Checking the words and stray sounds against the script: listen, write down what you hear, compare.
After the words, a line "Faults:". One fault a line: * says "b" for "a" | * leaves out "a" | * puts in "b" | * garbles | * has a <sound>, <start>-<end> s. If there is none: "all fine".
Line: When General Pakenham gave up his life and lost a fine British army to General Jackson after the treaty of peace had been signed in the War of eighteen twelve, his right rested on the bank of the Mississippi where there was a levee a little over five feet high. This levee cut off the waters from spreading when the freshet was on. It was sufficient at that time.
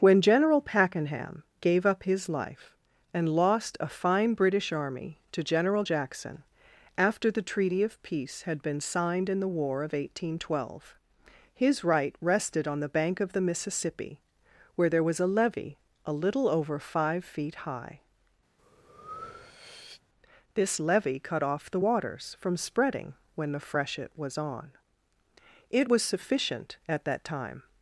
When General Pakenham gave up his life and lost a fine British army to General Jackson after the treaty of peace had been signed in the War of eighteen twelve, his right rested on the bank of the Mississippi where there was a levee a little over five feet high. This levee cut off the waters from spreading when the freshet was on. It was sufficient at that time.
Faults:
* has a breath, 18.6-20.0 s